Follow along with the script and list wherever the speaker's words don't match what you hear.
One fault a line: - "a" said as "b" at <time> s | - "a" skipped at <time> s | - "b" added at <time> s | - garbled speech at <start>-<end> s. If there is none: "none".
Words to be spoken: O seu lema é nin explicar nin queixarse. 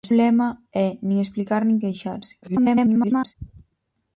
- "seu" skipped at 0.1 s
- garbled speech at 2.4-3.3 s